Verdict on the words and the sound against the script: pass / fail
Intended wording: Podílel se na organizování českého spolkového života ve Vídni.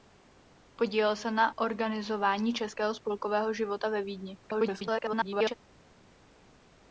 fail